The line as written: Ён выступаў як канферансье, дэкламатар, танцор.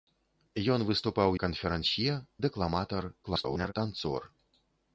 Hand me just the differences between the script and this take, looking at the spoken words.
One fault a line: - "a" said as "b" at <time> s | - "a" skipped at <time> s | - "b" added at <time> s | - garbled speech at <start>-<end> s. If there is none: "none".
- "як" skipped at 1.4 s
- garbled speech at 3.2-3.7 s